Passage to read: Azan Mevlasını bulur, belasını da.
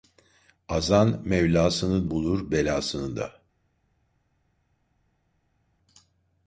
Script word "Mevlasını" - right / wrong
right